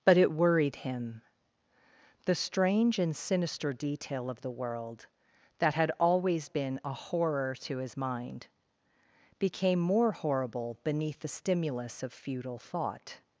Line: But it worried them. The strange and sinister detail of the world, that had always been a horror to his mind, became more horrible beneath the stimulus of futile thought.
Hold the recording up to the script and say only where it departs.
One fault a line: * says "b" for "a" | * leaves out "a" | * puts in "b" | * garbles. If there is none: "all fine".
* says "him" for "them"